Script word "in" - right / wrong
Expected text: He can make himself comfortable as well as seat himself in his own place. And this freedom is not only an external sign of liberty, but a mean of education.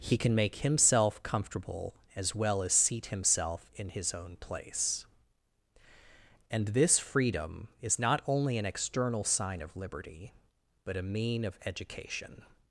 right